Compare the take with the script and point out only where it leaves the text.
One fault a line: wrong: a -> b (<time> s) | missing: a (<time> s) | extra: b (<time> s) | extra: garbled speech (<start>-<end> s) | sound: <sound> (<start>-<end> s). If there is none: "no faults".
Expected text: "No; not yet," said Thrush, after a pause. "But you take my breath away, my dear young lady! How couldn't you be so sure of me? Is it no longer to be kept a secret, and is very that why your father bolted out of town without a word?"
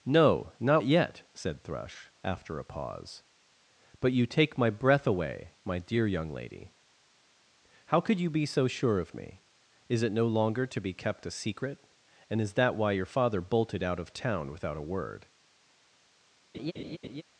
wrong: couldn't -> could (8.0 s)
missing: very (12.5 s)
sound: laugh (16.5-17.2 s)